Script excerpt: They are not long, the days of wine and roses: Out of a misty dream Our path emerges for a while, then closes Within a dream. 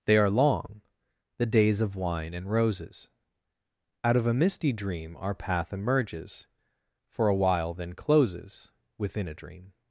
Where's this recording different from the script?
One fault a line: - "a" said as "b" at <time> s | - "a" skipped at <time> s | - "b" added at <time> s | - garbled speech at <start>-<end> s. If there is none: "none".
- "not" skipped at 0.3 s